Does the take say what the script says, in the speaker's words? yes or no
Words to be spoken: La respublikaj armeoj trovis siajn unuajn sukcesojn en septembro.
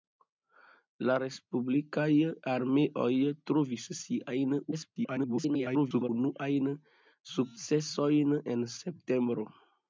no